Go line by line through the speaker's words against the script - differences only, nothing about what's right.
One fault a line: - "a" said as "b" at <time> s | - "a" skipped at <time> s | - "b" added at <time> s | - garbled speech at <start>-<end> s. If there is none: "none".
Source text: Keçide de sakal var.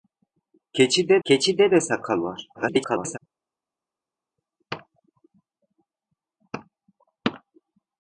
- "keçide" added at 1.2 s
- garbled speech at 2.5-3.2 s